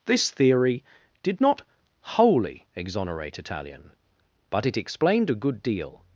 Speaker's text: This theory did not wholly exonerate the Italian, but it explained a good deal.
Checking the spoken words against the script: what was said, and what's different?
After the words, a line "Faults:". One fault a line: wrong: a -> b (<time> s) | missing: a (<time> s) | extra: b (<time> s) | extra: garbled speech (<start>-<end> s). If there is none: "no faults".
This theory did not wholly exonerate Italian, but it explained a good deal.
Faults:
missing: the (3.4 s)